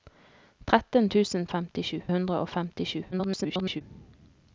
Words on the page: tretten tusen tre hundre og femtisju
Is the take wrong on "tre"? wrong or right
wrong